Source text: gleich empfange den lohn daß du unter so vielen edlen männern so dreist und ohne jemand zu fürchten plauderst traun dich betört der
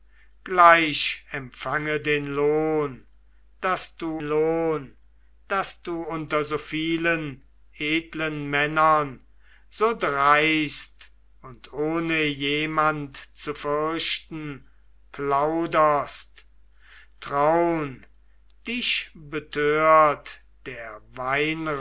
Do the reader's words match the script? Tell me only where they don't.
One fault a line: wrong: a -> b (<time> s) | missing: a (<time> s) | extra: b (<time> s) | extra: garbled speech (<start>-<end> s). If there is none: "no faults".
extra: lohn daß du (4.2 s)